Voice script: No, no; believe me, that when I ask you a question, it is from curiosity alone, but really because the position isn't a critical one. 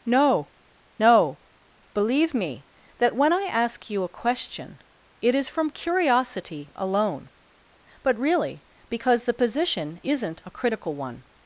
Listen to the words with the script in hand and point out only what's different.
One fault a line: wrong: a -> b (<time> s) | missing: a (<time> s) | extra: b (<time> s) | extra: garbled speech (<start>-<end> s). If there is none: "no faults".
no faults